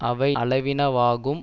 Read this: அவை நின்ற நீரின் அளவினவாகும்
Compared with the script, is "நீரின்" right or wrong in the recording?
wrong